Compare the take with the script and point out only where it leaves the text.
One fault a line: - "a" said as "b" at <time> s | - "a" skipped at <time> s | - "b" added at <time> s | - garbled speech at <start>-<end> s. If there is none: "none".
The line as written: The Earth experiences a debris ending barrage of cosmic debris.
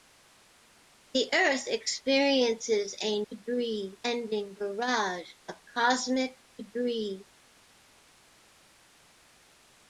none